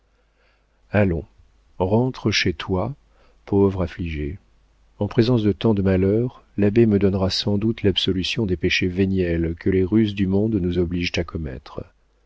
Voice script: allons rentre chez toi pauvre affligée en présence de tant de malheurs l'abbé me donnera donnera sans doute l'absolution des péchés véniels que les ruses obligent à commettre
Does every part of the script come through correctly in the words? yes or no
no